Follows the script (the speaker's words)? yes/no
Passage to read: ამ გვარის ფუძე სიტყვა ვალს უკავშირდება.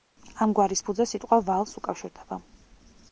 yes